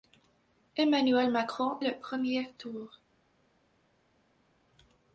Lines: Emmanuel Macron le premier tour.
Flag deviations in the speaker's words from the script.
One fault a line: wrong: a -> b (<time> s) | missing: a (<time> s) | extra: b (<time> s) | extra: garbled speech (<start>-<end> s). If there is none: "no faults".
no faults